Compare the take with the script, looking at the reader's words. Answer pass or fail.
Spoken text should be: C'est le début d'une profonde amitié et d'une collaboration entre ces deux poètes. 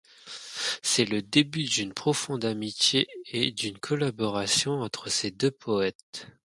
pass